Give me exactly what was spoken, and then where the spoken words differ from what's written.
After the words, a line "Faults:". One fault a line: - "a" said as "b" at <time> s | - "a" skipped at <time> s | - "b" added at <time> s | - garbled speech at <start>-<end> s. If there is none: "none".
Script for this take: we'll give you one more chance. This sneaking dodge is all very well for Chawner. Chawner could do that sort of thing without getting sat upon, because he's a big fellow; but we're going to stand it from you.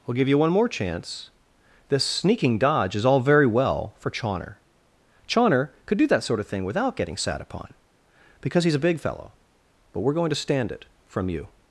we'll give you one more chance. This sneaking dodge is all very well for Chawner. Chawner could do that sort of thing without getting sat upon, because he's a big fellow; but we're going to stand it from you.
Faults:
none